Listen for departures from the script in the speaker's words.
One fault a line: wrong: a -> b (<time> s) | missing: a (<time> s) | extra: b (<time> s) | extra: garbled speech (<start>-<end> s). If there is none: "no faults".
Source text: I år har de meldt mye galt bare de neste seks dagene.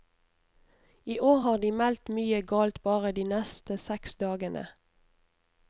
no faults